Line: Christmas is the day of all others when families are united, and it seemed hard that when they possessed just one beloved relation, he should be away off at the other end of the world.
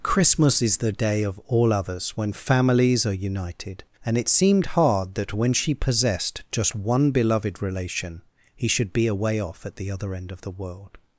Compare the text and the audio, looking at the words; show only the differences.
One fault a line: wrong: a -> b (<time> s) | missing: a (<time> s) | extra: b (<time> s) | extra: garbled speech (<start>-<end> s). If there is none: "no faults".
wrong: they -> she (5.5 s)